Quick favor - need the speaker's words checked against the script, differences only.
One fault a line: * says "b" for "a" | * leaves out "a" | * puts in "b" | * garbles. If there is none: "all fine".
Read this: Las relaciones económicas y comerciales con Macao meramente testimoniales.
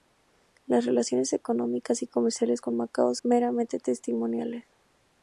all fine